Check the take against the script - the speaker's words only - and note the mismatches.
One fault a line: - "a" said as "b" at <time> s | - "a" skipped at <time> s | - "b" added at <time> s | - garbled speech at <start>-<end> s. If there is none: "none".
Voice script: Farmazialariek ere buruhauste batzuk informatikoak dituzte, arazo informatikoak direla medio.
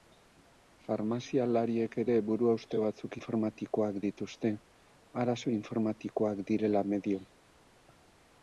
none